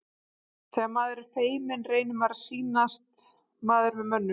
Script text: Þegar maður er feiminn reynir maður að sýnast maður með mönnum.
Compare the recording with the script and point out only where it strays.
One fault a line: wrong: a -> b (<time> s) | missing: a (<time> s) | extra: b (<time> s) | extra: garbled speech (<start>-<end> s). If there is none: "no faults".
no faults